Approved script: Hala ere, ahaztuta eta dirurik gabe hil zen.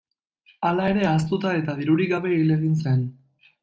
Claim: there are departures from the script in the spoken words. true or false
true